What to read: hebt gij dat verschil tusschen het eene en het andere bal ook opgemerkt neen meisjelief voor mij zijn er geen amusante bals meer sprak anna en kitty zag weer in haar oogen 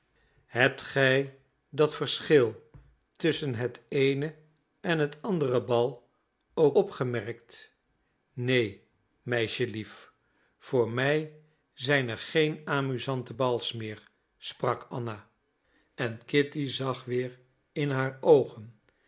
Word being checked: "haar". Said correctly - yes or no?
yes